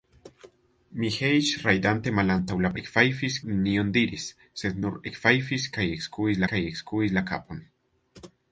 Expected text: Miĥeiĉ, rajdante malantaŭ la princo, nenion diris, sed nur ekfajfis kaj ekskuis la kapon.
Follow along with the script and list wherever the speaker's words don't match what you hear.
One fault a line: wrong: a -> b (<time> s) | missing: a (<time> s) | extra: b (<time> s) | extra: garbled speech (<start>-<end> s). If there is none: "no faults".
wrong: princo -> ekfajfis (2.8 s)
extra: kaj ekskuis (6.5 s)